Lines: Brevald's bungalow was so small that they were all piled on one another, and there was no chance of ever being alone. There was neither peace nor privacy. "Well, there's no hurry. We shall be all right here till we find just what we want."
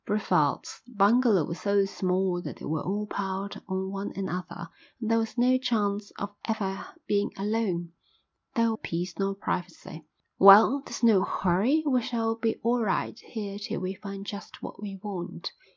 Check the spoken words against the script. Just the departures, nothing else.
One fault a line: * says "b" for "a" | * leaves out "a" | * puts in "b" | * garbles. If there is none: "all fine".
* leaves out "was neither"